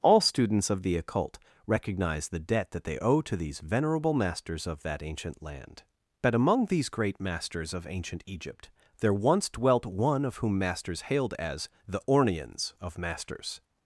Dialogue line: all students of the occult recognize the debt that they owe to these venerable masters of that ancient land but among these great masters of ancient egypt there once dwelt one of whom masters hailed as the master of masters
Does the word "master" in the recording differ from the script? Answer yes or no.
yes